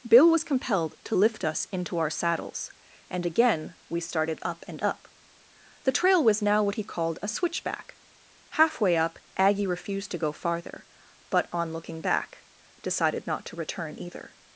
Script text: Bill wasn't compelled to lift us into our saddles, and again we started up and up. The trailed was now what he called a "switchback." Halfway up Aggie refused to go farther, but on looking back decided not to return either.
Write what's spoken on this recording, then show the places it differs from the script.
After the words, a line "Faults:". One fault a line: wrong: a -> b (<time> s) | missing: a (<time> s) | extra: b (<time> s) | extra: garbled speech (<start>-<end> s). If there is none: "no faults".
Bill was compelled to lift us into our saddles, and again we started up and up. The trail was now what he called a "switchback." Halfway up Aggie refused to go farther, but on looking back decided not to return either.
Faults:
wrong: wasn't -> was (0.3 s)
wrong: trailed -> trail (5.9 s)